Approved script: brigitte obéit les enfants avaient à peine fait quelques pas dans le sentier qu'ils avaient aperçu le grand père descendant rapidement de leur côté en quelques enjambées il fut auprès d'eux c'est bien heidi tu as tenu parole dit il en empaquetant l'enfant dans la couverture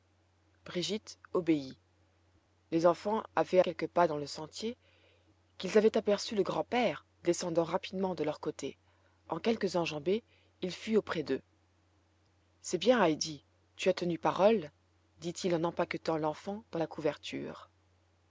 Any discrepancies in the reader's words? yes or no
yes